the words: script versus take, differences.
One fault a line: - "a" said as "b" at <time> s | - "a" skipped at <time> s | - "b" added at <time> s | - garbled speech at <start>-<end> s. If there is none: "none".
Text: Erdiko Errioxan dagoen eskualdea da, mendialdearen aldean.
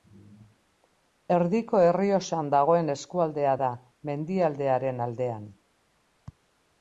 none